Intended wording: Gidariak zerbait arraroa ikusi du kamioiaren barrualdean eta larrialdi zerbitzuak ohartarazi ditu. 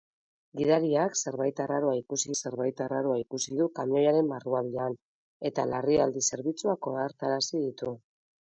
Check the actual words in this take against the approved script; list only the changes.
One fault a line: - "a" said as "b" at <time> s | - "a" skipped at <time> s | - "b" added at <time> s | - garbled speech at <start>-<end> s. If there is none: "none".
- "zerbait arraroa ikusi" added at 2.4 s